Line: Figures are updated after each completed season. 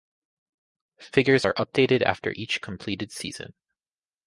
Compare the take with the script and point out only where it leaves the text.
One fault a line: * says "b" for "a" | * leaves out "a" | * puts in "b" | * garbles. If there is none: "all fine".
all fine